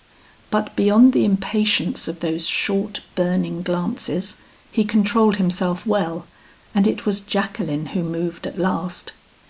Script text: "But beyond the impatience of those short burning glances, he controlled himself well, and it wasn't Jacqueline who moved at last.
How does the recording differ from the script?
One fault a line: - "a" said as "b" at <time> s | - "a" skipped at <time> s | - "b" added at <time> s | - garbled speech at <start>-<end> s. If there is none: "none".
- "wasn't" said as "was" at 7.1 s